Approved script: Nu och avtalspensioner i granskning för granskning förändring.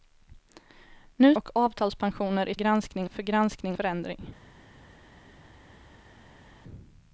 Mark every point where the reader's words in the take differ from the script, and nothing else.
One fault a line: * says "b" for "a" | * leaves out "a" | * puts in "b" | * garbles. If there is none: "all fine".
all fine